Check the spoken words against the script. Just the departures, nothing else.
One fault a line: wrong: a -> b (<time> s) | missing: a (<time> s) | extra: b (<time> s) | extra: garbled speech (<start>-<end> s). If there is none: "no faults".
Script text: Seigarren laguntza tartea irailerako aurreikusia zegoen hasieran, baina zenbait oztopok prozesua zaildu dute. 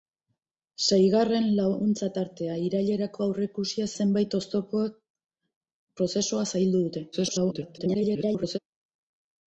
missing: zegoen hasieran baina (3.9 s)
extra: garbled speech (7.1-8.6 s)